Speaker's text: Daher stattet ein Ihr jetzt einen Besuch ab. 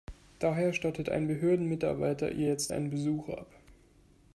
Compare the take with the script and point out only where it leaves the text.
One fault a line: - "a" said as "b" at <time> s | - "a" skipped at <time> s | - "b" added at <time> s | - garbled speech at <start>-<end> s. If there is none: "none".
- "Behördenmitarbeiter" added at 1.3 s